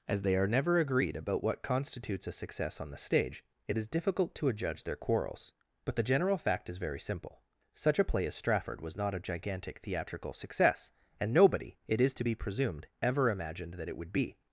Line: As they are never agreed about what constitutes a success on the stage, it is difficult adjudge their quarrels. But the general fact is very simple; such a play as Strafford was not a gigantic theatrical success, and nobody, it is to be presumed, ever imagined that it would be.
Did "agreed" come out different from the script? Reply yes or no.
no